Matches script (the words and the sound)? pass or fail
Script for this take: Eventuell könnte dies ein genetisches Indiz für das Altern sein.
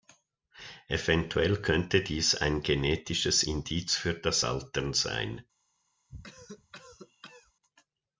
fail